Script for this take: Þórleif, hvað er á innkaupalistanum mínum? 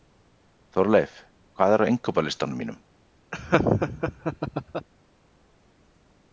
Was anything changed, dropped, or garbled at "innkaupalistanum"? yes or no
no